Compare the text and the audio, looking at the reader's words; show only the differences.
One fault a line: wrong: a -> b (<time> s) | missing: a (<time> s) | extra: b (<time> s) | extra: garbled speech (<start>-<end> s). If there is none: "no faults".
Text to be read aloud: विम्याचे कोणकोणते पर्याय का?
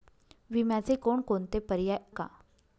no faults